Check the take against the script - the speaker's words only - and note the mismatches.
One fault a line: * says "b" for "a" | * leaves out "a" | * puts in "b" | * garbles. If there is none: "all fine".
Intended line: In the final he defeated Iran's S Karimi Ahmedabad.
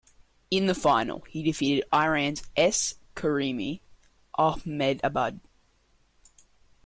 all fine